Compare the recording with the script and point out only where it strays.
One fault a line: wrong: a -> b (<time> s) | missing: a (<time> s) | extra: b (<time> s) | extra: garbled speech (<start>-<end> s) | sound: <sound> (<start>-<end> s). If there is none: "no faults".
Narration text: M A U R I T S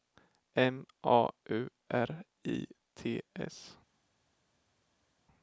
no faults